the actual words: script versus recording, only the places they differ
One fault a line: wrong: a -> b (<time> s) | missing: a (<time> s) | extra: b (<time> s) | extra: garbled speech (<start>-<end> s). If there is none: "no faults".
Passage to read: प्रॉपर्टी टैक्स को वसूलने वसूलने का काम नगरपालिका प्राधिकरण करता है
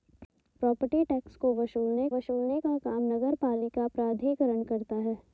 no faults